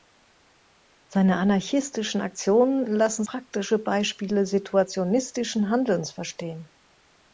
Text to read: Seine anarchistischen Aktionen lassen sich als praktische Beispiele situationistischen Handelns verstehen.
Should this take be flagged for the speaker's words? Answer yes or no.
yes